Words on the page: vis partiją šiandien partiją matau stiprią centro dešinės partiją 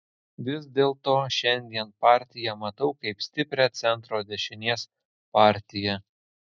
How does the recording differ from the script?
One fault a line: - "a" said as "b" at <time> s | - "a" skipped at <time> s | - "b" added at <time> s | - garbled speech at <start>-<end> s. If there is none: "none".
- "partiją" said as "dėlto" at 0.8 s
- "kaip" added at 3.0 s